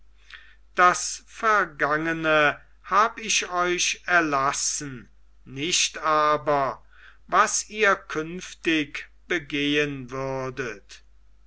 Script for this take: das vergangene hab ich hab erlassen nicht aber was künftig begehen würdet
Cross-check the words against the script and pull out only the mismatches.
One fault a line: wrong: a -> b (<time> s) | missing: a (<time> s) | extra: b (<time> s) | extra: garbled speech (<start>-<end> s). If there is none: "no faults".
wrong: hab -> euch (3.5 s)
extra: ihr (7.7 s)